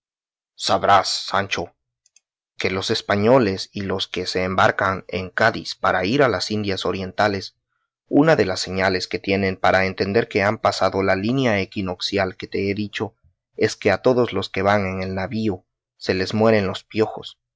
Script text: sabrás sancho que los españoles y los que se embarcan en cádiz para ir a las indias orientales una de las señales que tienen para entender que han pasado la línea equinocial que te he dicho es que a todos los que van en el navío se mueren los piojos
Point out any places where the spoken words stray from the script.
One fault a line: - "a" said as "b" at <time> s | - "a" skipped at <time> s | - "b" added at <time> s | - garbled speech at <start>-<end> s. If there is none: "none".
- "les" added at 16.1 s